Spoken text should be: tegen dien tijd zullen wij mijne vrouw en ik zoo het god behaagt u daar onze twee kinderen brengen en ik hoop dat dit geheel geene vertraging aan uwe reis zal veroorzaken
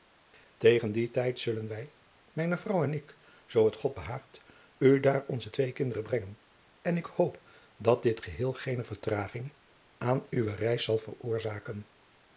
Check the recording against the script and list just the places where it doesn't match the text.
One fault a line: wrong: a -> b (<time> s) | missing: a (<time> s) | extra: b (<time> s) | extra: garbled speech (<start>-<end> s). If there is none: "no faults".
no faults